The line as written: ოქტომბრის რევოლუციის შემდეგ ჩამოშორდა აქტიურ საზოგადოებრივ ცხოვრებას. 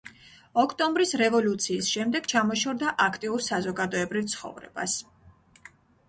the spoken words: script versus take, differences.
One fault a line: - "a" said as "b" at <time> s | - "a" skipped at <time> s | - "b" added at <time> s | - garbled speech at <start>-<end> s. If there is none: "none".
none